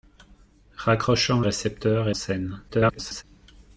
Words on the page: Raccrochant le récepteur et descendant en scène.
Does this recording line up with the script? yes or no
no